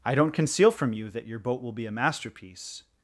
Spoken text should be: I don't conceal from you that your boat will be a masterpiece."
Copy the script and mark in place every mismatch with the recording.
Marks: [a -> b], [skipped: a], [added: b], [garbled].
I don't conceal from you that your boat will be a masterpiece."